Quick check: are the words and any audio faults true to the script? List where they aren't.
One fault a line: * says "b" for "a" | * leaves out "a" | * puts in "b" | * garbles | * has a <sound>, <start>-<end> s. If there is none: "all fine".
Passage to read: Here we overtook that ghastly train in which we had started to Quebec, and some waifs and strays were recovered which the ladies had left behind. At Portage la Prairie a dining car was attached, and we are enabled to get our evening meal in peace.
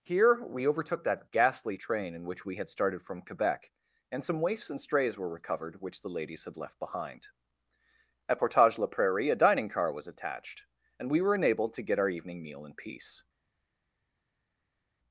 * says "from" for "to"
* says "were" for "are"